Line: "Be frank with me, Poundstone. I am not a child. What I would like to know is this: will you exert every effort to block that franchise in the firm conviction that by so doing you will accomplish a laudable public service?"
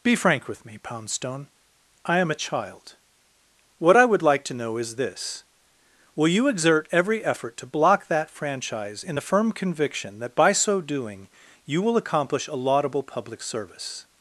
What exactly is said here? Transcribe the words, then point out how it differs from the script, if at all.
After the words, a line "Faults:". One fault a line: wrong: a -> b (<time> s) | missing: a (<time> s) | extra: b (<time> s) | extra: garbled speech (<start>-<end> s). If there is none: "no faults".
"Be frank with me, Poundstone. I am a child. What I would like to know is this: will you exert every effort to block that franchise in the firm conviction that by so doing you will accomplish a laudable public service?"
Faults:
missing: not (2.3 s)